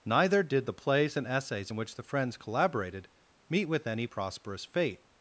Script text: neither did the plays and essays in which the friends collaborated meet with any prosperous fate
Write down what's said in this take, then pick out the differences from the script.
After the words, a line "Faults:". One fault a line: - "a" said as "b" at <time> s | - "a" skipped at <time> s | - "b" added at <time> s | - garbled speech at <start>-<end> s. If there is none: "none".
neither did the plays and essays in which the friends collaborated meet with any prosperous fate
Faults:
none